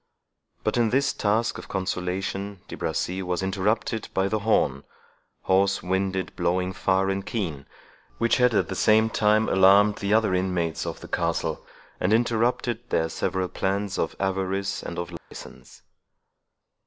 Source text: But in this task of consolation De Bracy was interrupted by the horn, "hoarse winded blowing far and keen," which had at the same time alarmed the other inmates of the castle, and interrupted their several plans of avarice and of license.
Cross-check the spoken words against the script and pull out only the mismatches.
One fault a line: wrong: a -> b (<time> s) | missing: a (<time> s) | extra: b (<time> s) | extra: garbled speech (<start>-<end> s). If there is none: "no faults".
no faults